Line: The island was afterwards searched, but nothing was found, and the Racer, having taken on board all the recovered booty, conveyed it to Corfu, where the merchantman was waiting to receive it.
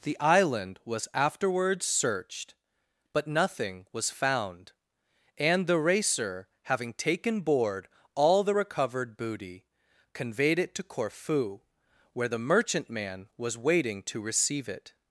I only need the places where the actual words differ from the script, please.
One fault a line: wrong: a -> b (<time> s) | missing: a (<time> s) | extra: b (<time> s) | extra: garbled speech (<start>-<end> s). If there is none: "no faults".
missing: on (7.4 s)